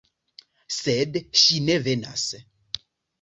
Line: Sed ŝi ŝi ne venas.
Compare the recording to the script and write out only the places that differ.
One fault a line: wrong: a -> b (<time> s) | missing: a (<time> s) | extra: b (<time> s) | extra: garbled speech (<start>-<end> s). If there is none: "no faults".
missing: ŝi (1.6 s)